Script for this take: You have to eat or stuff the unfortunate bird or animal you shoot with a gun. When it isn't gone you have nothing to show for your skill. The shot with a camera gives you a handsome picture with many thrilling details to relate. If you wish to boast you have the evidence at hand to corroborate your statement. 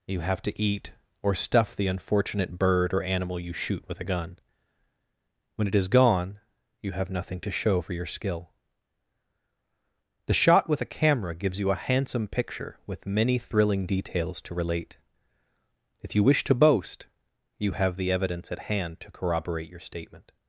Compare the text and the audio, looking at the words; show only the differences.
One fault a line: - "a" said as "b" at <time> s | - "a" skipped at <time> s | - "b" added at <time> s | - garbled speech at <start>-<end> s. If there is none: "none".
- "isn't" said as "is" at 5.8 s